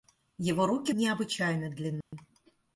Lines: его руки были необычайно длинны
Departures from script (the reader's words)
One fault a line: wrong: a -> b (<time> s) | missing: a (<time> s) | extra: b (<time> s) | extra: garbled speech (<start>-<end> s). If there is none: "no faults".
missing: были (0.9 s)